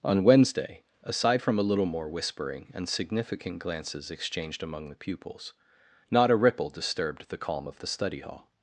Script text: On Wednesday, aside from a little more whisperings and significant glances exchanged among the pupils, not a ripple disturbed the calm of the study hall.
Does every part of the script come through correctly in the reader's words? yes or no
no